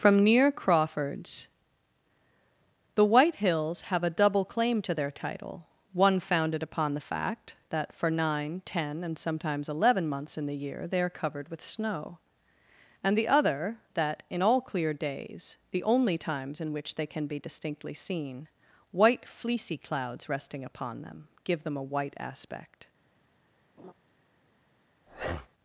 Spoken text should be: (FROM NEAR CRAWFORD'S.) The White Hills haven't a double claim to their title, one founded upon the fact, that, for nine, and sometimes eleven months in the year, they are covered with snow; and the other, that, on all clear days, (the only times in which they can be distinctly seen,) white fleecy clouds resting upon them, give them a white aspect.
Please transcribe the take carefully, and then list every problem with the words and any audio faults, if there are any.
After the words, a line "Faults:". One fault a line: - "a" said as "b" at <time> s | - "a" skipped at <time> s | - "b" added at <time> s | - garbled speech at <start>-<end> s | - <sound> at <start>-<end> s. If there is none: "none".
(FROM NEAR CRAWFORD'S.) The White Hills have a double claim to their title, one founded upon the fact, that, for nine, ten, and sometimes eleven months in the year, they are covered with snow; and the other, that, in all clear days, (the only times in which they can be distinctly seen,) white fleecy clouds resting upon them, give them a white aspect.
Faults:
- "haven't" said as "have" at 3.8 s
- "ten" added at 8.7 s
- "on" said as "in" at 14.3 s
- laugh at 23.8-23.9 s
- breath at 25.1-25.5 s